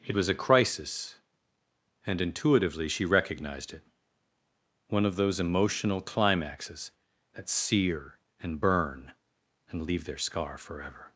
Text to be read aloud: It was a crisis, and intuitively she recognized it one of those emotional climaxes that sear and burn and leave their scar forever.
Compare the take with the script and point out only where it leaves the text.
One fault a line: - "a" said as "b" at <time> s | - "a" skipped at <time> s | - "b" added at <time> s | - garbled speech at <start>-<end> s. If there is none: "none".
none